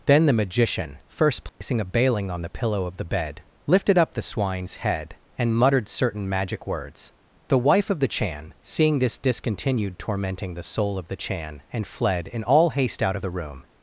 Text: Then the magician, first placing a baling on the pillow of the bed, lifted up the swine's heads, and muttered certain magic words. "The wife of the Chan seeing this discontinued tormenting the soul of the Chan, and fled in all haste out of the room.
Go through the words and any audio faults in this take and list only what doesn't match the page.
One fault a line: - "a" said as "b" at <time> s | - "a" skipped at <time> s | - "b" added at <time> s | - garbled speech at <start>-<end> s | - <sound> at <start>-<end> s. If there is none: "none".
- dropout at 1.5-1.6 s
- "heads" said as "head" at 4.8 s